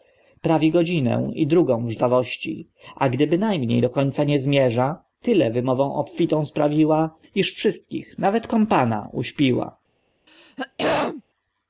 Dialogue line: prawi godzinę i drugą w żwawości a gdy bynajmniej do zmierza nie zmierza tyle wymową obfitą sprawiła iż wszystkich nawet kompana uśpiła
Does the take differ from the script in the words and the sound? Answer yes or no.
yes